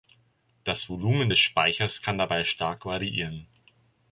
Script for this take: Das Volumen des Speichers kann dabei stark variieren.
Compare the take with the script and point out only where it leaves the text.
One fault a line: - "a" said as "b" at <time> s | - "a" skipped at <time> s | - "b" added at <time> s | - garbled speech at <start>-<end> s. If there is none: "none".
none